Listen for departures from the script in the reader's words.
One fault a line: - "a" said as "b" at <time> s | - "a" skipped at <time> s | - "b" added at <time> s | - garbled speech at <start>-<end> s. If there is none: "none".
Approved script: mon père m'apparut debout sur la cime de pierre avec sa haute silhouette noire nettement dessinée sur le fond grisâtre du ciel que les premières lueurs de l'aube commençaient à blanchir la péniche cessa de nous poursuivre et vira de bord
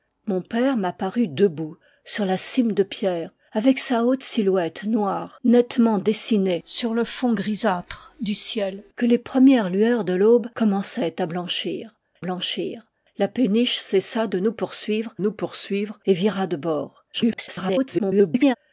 - "blanchir" added at 12.2 s
- "nous poursuivre" added at 15.2 s
- garbled speech at 17.1-18.6 s